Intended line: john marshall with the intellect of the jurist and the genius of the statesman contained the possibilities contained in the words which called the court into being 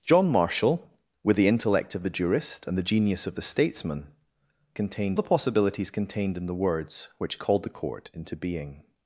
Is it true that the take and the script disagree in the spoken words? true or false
false